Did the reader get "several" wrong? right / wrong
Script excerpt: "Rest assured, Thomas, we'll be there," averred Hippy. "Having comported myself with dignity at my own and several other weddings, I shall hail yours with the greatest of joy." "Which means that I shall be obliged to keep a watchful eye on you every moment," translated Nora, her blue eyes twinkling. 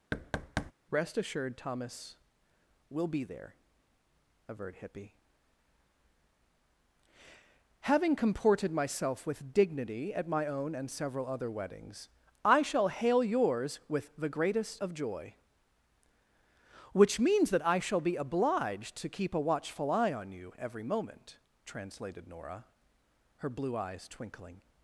right